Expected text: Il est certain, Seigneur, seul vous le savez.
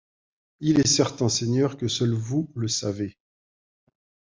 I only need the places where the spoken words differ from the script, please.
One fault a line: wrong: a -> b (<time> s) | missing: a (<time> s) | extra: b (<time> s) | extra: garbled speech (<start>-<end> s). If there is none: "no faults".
extra: que (1.8 s)